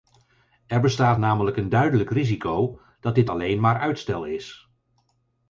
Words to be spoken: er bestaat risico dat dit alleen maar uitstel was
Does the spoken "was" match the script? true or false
false